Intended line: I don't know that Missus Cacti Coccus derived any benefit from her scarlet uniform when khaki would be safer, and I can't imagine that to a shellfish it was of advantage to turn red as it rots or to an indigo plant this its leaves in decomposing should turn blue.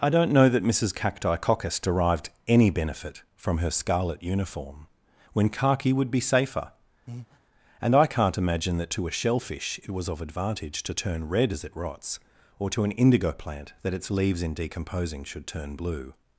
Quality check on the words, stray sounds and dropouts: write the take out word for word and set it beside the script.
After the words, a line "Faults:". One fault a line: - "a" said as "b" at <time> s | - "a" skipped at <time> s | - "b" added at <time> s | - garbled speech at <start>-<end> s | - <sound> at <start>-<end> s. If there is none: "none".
I don't know that Missus Cacti Coccus derived any benefit from her scarlet uniform when khaki would be safer, and I can't imagine that to a shellfish it was of advantage to turn red as it rots or to an indigo plant that its leaves in decomposing should turn blue.
Faults:
- breath at 7.1-7.4 s
- "this" said as "that" at 13.8 s